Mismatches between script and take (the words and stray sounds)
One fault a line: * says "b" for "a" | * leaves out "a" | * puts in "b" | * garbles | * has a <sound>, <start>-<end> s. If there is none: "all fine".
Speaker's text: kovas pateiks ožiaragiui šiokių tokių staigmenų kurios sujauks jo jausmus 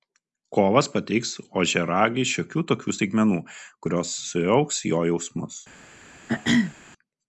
* has a throat clearing, 6.3-6.7 s